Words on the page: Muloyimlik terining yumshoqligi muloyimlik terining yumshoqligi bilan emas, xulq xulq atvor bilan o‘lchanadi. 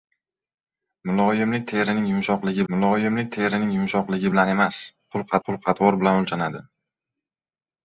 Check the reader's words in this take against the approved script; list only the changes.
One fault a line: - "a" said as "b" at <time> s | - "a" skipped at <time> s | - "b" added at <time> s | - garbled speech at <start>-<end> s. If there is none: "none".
none